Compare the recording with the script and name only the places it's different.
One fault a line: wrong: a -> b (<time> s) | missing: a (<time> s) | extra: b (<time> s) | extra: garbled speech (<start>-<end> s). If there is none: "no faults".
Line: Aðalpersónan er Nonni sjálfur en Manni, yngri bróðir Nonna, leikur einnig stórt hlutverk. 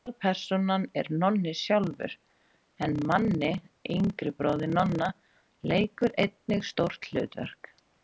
no faults